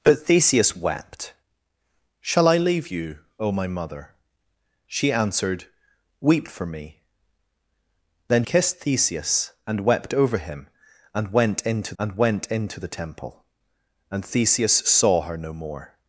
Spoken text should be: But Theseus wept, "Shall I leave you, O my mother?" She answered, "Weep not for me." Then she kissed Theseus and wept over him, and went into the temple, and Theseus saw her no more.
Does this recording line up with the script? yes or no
no